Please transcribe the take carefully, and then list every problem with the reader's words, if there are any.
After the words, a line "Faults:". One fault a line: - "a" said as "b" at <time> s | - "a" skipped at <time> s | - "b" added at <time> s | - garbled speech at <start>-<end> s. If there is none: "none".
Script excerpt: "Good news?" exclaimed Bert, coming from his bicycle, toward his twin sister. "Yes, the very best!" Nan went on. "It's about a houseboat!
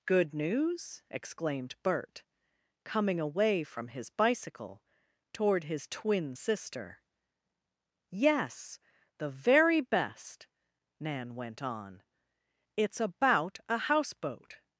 "Good news?" exclaimed Bert, coming away from his bicycle, toward his twin sister. "Yes, the very best!" Nan went on. "It's about a houseboat!
Faults:
- "away" added at 3.2 s